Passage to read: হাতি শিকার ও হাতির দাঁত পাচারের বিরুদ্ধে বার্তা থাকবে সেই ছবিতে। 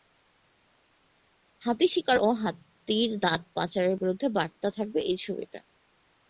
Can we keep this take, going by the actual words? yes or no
no